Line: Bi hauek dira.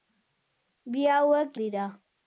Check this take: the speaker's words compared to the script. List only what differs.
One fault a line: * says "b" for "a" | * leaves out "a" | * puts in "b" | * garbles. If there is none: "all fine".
all fine